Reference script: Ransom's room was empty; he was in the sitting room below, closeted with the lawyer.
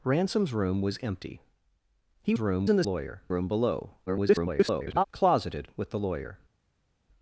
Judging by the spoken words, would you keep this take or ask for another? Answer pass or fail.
fail